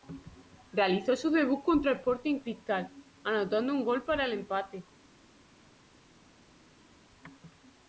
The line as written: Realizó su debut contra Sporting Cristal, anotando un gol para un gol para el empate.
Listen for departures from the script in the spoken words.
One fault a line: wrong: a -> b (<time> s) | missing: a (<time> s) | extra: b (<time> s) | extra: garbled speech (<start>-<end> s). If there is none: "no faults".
missing: un gol para (4.2 s)